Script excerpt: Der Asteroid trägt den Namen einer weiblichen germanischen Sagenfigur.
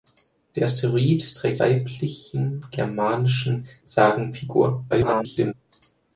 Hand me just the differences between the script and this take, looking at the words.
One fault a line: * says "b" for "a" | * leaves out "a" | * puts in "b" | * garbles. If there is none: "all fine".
* leaves out "den Namen einer"
* garbles